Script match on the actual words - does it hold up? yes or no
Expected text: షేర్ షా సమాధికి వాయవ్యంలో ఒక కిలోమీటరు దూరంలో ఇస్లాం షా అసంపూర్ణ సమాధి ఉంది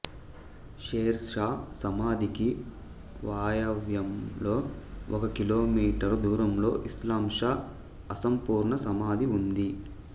yes